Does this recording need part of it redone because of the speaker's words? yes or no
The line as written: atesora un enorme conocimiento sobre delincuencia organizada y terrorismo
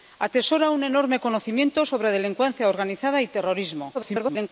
yes